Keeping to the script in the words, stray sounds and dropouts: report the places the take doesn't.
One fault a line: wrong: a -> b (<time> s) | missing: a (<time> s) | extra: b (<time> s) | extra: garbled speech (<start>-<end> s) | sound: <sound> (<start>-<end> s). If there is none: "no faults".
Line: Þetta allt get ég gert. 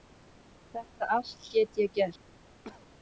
sound: cough (2.6-2.9 s)